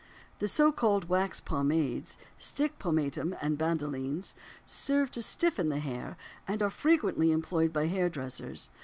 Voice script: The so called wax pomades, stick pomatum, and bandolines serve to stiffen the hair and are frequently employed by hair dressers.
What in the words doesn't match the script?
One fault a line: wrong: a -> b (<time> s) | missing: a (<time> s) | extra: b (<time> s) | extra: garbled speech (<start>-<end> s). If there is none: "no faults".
no faults